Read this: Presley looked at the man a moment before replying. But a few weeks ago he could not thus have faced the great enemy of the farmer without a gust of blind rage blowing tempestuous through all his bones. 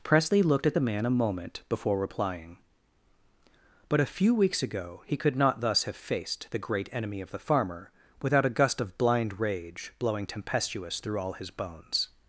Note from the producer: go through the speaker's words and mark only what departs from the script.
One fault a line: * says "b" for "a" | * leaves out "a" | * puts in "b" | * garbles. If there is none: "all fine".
all fine